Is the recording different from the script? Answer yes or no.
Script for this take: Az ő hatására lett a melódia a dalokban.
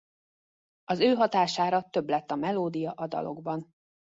yes